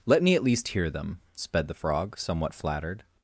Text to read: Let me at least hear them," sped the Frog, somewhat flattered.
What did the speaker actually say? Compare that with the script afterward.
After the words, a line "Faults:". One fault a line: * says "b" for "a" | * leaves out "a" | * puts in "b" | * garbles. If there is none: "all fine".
Let me at least hear them," sped the Frog, somewhat flattered.
Faults:
all fine